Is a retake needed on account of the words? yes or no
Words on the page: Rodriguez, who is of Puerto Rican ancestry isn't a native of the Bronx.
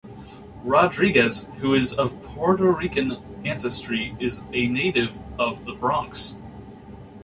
yes